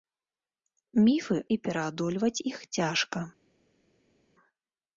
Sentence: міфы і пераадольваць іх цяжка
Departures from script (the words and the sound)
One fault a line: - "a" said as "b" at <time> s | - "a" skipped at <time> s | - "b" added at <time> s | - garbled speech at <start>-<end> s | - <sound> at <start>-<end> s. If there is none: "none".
none